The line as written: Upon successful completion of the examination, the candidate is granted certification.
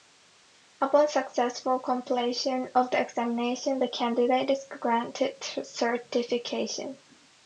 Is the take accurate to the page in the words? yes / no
yes